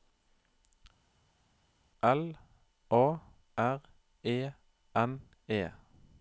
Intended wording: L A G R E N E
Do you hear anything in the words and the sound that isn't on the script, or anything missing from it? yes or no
yes